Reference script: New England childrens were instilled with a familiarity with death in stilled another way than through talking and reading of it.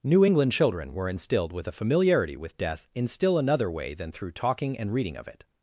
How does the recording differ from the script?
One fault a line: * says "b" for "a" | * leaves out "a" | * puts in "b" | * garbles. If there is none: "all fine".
* says "children" for "childrens"
* says "still" for "stilled"